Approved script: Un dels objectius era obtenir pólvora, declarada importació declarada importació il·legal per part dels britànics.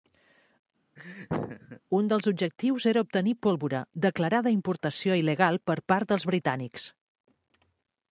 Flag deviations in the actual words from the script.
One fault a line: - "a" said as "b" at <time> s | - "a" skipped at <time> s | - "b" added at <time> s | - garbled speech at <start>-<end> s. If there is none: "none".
- "declarada importació" skipped at 5.2 s